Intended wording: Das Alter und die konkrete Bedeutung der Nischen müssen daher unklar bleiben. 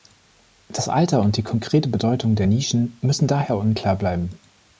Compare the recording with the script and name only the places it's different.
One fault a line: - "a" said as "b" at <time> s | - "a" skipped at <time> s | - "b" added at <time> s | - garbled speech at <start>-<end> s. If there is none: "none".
none